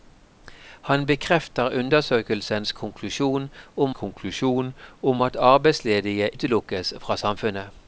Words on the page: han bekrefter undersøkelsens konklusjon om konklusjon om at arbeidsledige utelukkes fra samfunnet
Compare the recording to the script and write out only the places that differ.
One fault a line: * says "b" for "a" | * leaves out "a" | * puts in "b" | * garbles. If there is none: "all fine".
all fine